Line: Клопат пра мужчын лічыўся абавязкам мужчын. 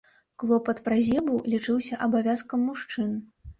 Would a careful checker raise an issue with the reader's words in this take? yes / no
yes